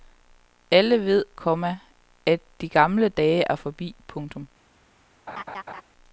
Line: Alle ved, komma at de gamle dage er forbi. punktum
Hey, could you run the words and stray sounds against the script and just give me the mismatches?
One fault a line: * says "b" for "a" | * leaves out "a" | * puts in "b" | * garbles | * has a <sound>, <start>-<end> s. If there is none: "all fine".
* has a laugh, 5.3-5.8 s